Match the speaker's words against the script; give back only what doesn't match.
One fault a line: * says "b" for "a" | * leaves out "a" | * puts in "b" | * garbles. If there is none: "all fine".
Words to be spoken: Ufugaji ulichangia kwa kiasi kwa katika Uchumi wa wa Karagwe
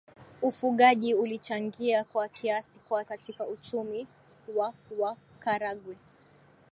all fine